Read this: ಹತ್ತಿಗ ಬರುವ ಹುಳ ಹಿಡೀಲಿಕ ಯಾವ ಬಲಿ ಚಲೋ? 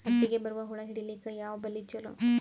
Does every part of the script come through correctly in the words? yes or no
yes